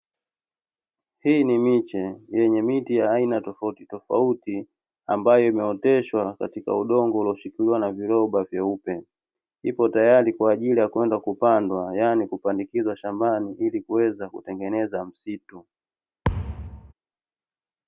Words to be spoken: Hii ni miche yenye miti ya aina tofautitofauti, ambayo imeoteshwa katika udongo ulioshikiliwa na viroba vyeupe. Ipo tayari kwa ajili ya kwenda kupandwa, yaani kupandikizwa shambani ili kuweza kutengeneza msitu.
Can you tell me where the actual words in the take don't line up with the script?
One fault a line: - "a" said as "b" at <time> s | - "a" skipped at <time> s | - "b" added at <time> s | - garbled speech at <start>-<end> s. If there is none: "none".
none